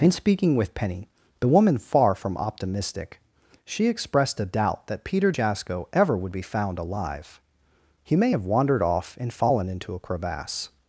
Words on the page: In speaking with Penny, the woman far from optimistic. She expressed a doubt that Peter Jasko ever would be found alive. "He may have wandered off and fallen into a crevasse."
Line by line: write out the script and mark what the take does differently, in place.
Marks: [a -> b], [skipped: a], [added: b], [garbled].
In speaking with Penny, the woman far from optimistic. She expressed a doubt that Peter Jasko ever would be found alive. "He may have wandered off and fallen into a crevasse."